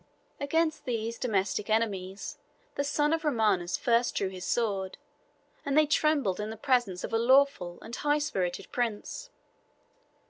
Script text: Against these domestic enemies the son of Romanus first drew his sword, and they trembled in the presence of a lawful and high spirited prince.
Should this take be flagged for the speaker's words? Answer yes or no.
no